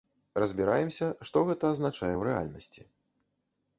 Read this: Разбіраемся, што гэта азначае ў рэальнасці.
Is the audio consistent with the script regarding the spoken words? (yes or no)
yes